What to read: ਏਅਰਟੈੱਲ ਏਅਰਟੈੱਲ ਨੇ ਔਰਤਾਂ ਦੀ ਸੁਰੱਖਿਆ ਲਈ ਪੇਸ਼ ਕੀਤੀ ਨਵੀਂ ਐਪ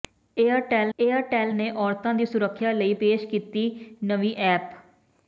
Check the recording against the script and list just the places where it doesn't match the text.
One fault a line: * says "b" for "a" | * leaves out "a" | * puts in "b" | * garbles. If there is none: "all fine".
all fine